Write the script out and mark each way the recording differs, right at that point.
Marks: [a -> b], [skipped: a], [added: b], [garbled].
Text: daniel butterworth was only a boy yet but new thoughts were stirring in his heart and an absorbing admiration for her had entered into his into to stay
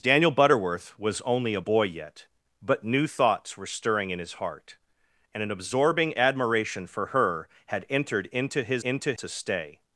daniel butterworth was only a boy yet but new thoughts were stirring in his heart and an absorbing admiration for her had entered into his into to stay